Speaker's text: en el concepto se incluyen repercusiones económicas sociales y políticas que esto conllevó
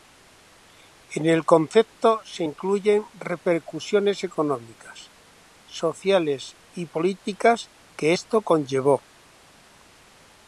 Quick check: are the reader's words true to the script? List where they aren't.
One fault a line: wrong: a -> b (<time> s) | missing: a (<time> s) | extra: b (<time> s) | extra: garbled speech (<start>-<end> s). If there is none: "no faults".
no faults